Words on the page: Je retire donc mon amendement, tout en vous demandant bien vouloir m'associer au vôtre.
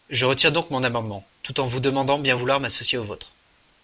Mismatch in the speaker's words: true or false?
false